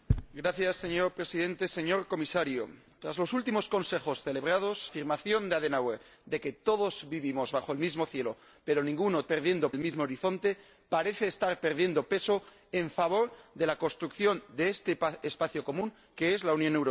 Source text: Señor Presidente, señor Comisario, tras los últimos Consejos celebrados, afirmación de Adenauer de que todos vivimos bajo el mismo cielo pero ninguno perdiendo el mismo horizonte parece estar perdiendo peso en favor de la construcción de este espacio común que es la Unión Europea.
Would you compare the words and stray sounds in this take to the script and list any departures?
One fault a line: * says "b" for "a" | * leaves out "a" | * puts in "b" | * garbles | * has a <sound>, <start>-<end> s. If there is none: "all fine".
all fine